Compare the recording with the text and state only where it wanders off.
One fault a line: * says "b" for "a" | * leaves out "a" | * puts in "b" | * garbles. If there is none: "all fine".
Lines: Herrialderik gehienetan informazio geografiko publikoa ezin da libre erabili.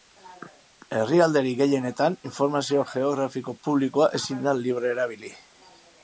all fine